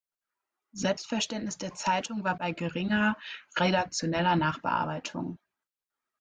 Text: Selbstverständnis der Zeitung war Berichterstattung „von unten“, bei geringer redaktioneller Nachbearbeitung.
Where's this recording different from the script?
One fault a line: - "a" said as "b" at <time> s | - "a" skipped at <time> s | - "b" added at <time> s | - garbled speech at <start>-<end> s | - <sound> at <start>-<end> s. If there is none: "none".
- "Berichterstattung von unten" skipped at 2.4 s